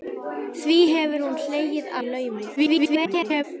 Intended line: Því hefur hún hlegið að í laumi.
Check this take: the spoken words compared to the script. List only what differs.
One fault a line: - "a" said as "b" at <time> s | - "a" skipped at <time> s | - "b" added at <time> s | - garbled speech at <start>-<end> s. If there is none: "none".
- "að" skipped at 1.9 s
- garbled speech at 2.6-3.4 s